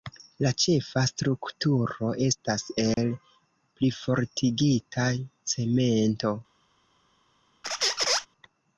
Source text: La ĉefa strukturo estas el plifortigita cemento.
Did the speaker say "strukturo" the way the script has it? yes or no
yes